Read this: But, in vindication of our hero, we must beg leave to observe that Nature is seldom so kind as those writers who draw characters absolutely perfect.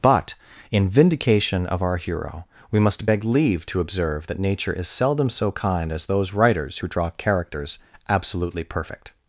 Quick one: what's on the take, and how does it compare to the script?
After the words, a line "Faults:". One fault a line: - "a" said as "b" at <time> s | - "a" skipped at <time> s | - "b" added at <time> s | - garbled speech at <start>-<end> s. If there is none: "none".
But, in vindication of our hero, we must beg leave to observe that Nature is seldom so kind as those writers who draw characters absolutely perfect.
Faults:
none